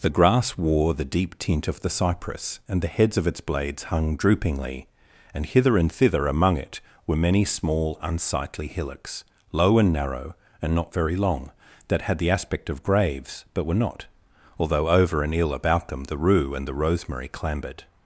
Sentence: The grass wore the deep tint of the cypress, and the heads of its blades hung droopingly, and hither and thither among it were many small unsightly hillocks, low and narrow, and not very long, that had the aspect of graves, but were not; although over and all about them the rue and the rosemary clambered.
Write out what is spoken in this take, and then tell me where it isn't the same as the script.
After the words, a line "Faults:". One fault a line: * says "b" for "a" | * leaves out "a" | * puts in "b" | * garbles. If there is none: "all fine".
The grass wore the deep tint of the cypress, and the heads of its blades hung droopingly, and hither and thither among it were many small unsightly hillocks, low and narrow, and not very long, that had the aspect of graves, but were not; although over and ill about them the rue and the rosemary clambered.
Faults:
* says "ill" for "all"